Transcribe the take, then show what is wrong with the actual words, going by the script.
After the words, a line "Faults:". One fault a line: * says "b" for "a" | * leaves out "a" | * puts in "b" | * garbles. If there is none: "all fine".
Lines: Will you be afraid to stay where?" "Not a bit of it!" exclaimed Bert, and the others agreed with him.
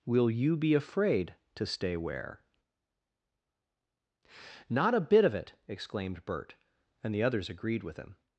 Will you be afraid to stay where?" "Not a bit of it!" exclaimed Bert, and the others agreed with him.
Faults:
all fine